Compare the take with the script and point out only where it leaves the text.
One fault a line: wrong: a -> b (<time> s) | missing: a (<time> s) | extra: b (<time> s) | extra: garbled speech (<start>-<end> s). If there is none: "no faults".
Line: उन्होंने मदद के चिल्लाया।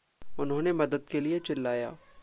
extra: लिए (1.2 s)